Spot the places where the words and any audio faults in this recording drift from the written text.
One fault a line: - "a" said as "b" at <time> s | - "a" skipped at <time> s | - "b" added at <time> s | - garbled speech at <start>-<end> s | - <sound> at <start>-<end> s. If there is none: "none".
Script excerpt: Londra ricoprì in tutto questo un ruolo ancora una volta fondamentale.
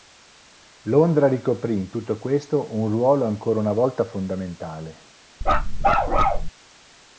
- bark at 5.4-6.5 s